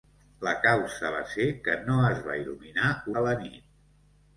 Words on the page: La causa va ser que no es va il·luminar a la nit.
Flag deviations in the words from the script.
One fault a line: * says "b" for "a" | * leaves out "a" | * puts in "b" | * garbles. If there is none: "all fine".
all fine